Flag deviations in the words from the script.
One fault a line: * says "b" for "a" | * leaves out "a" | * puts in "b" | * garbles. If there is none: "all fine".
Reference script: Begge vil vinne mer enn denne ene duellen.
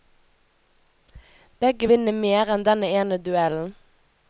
* leaves out "vil"